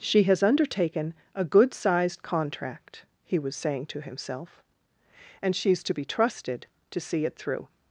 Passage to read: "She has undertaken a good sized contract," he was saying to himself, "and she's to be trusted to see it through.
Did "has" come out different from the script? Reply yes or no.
no